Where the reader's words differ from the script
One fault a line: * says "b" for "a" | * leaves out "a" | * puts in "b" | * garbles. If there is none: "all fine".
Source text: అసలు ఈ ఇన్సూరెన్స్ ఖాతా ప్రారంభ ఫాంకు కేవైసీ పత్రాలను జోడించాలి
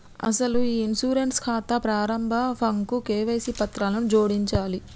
all fine